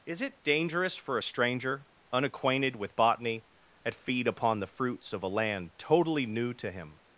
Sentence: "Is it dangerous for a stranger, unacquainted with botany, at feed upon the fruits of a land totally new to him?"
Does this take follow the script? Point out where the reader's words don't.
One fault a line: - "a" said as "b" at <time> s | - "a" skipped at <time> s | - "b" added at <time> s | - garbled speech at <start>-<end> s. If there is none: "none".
none